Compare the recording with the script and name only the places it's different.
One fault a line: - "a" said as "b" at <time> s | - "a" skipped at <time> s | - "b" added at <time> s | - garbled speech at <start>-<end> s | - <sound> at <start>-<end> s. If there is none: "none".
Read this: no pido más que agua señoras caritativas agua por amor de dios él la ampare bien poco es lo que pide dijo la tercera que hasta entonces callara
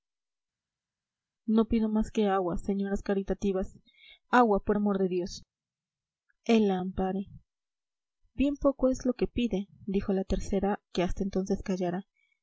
none